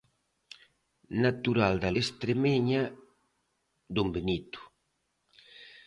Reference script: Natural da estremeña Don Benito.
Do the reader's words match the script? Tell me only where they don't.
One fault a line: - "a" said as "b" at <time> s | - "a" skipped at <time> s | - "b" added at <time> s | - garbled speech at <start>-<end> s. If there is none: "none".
none